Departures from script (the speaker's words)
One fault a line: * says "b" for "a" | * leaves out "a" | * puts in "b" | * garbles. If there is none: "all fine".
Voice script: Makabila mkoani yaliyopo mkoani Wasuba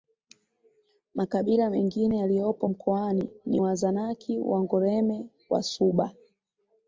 * says "mengine" for "mkoani"
* puts in "ni Wazanaki Wangoreme"